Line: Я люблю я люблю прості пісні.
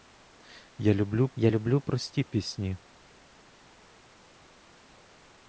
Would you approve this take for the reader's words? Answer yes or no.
yes